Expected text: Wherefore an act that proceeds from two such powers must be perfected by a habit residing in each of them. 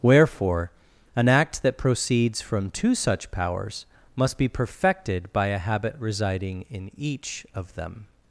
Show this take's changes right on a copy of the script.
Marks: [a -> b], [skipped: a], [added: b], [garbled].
Wherefore an act that proceeds from two such powers must be perfected by a habit residing in each of them.